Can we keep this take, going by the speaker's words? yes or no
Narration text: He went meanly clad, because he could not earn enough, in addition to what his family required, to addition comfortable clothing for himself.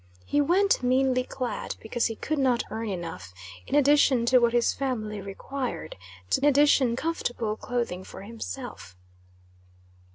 yes